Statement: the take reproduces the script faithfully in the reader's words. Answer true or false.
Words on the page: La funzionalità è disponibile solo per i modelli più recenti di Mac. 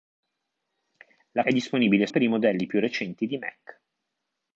false